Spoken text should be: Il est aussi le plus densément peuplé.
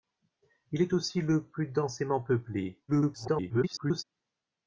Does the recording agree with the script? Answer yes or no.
no